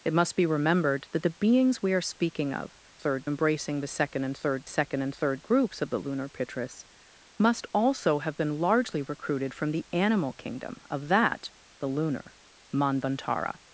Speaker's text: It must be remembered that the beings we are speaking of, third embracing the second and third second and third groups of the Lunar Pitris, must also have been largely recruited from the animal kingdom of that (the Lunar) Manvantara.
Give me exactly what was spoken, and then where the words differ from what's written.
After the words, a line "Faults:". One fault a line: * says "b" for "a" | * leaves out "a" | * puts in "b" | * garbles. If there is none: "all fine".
It must be remembered that the beings we are speaking of, third embracing the second and third second and third groups of the Lunar Pitris, must also have been largely recruited from the animal kingdom of that (the Lunar) Manvantara.
Faults:
all fine